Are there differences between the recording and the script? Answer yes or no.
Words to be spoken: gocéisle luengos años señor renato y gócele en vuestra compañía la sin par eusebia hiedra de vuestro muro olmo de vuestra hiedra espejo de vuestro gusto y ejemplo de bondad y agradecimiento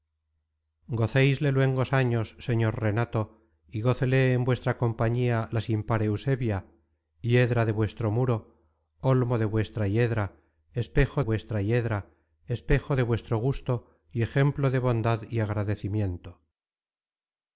yes